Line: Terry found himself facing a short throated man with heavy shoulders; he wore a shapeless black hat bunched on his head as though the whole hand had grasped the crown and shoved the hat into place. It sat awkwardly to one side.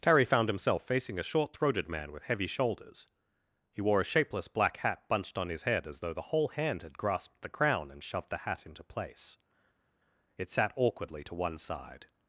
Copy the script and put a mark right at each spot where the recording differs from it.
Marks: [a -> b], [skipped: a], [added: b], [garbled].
Terry found himself facing a short throated man with heavy shoulders; he wore a shapeless black hat bunched on his head as though the whole hand had grasped the crown and shoved the hat into place. It sat awkwardly to one side.